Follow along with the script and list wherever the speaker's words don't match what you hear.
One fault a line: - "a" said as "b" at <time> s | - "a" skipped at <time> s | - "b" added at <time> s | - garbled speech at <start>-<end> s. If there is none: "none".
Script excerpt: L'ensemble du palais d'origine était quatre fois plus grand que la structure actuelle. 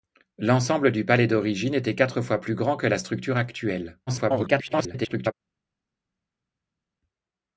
- garbled speech at 4.1-5.3 s